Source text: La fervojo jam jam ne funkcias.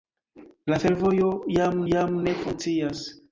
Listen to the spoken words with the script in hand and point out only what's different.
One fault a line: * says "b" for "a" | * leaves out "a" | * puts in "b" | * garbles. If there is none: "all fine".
all fine